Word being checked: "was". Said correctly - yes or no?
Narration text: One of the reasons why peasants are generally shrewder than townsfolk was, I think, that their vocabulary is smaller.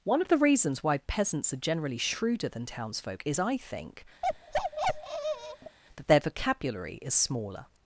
no